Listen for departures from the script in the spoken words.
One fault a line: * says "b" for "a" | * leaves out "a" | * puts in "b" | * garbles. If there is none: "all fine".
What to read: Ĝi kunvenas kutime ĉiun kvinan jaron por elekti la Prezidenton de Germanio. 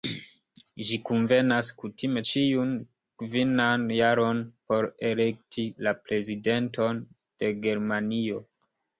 all fine